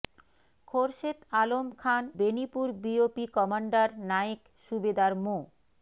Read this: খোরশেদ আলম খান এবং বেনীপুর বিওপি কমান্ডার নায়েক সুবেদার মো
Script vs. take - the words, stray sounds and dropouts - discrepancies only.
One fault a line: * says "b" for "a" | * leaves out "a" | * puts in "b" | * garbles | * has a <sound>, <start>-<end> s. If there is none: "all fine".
* leaves out "এবং"